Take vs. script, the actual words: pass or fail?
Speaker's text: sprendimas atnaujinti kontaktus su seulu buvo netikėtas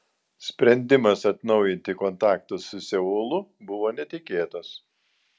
pass